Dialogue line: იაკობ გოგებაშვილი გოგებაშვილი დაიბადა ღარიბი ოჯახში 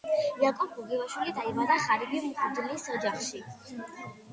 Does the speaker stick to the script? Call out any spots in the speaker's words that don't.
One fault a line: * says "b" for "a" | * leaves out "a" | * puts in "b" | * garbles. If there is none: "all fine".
* leaves out "გოგებაშვილი"
* puts in "მღვდლის"